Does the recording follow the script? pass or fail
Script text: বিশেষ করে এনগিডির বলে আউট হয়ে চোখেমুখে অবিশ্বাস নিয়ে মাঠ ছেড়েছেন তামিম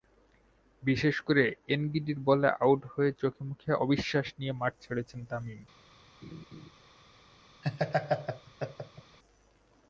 pass